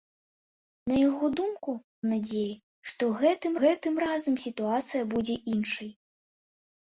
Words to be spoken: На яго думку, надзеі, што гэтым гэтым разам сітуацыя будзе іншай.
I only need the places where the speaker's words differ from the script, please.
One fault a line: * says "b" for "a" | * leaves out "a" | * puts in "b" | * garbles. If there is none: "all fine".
all fine